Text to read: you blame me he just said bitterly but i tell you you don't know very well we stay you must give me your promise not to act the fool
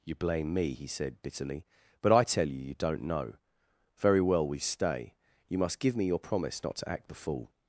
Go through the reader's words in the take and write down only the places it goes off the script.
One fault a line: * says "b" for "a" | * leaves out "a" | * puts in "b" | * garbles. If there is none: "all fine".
* leaves out "just"